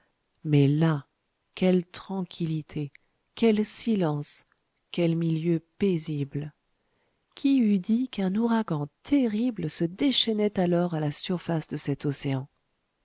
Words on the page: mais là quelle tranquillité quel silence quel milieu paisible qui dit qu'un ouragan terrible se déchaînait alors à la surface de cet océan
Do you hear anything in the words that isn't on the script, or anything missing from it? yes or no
yes